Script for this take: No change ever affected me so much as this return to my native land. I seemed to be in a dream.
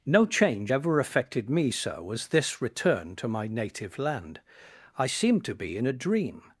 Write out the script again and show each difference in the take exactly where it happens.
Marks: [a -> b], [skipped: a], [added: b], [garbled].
No change ever affected me so [skipped: much] as this return to my native land. I seemed to be in a dream.